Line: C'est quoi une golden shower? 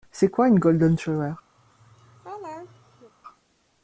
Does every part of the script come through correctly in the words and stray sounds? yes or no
no